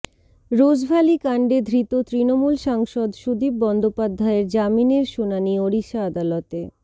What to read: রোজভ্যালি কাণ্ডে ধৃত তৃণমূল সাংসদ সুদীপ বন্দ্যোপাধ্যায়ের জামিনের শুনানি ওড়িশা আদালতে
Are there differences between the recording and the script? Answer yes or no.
no